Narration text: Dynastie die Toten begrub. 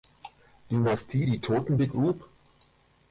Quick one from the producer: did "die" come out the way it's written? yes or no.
yes